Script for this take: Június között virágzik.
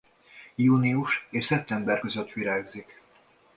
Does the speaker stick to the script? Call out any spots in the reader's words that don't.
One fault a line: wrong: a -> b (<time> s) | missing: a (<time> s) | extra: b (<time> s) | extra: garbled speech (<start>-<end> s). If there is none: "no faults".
extra: és szeptember (1.3 s)